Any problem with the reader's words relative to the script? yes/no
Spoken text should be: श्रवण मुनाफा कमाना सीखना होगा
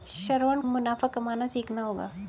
no